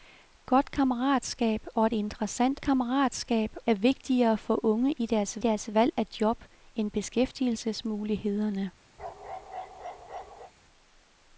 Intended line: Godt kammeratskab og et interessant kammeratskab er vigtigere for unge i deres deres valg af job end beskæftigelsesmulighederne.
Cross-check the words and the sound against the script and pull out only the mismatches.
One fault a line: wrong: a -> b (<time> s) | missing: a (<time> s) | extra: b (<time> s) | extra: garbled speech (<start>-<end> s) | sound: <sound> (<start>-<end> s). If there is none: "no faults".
sound: bark (9.0-10.5 s)